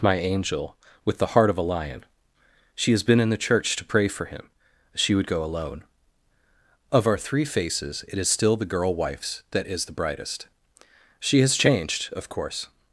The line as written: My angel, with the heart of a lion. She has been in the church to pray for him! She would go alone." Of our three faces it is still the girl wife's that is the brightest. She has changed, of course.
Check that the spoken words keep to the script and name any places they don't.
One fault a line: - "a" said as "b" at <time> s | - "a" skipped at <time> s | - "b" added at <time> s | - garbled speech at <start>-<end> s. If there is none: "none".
none